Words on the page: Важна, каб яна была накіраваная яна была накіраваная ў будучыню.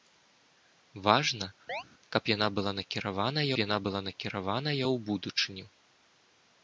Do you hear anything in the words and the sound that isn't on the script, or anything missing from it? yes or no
yes